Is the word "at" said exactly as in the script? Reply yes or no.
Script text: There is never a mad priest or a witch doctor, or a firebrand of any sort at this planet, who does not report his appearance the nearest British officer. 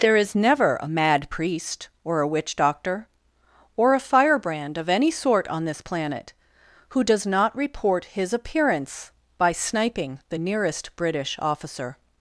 no